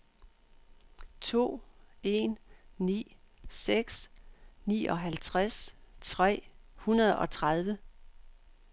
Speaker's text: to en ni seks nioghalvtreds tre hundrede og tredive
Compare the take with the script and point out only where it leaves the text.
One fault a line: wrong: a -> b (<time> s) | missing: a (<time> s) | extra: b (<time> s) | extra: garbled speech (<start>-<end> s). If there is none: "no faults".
no faults